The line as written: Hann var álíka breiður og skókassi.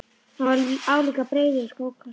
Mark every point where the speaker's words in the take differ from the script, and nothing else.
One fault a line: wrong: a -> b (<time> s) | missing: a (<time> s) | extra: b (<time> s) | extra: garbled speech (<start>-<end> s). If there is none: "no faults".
no faults